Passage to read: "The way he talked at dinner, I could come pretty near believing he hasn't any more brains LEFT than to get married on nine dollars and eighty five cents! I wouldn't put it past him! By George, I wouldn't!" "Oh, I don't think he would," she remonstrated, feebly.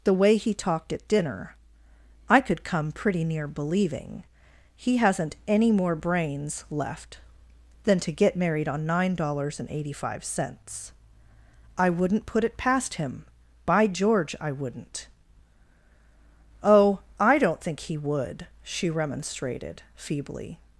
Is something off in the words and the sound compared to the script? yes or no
no